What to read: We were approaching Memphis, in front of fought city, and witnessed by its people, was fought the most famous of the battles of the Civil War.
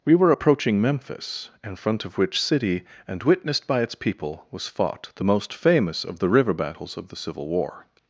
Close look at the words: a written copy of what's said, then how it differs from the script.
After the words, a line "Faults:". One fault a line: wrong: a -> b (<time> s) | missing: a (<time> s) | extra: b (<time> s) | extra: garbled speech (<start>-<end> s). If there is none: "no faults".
We were approaching Memphis, in front of which city, and witnessed by its people, was fought the most famous of the river battles of the Civil War.
Faults:
wrong: fought -> which (2.2 s)
extra: river (6.3 s)